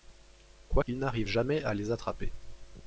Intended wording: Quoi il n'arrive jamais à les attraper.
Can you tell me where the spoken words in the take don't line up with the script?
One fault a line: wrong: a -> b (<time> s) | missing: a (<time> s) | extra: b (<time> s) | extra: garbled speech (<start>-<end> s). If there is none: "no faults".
no faults